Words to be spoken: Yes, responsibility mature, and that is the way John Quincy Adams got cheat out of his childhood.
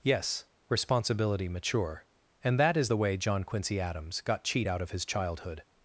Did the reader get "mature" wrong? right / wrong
right